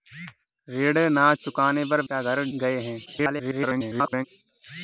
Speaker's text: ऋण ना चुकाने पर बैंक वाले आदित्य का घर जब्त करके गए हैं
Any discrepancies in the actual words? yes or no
yes